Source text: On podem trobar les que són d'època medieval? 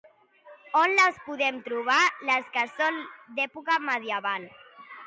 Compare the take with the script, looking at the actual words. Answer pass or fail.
fail